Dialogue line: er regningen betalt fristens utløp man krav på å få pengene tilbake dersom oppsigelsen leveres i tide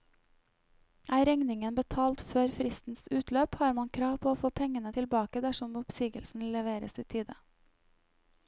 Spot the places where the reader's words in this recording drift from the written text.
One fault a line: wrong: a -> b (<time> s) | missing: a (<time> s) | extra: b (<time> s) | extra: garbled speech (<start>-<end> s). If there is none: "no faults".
extra: før (2.3 s)
extra: har (3.6 s)